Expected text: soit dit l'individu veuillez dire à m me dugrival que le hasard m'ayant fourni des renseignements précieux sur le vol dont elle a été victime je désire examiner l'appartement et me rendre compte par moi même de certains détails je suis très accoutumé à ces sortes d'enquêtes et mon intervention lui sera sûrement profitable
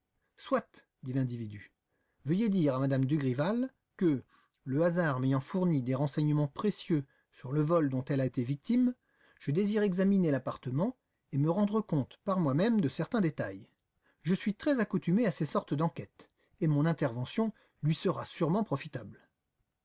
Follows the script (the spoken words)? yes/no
yes